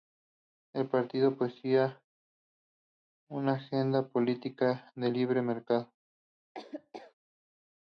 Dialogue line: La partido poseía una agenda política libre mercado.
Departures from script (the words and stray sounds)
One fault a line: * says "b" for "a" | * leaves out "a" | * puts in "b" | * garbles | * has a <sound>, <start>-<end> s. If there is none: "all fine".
* says "El" for "La"
* puts in "de"
* has a laugh, 6.5-7.1 s